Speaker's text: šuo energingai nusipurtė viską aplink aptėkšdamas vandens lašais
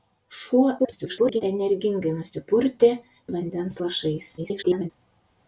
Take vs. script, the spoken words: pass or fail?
fail